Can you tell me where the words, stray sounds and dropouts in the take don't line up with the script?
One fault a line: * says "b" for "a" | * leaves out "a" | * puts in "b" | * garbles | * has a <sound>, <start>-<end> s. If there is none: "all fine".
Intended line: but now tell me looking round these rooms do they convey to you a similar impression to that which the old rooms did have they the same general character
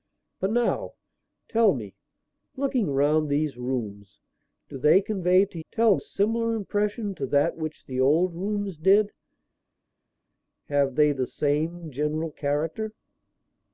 * says "tell" for "you"